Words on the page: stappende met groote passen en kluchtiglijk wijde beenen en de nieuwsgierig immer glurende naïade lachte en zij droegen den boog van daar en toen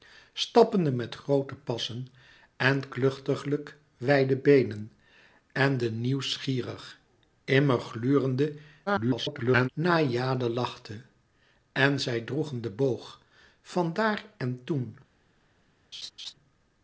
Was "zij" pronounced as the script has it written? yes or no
yes